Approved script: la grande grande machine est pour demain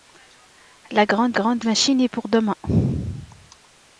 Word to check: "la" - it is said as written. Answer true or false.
true